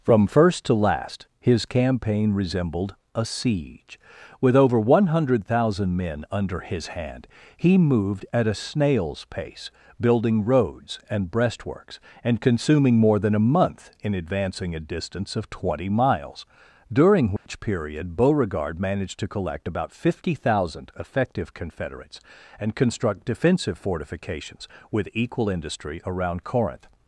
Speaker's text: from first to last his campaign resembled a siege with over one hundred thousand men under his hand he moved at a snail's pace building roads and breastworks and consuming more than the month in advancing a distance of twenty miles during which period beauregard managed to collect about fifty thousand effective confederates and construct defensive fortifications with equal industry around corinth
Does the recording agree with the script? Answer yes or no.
no